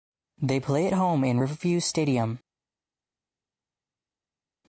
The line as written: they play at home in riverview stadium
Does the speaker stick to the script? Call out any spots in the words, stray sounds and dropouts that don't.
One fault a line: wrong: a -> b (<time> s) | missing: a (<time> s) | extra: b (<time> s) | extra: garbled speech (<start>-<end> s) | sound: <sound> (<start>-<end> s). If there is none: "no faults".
no faults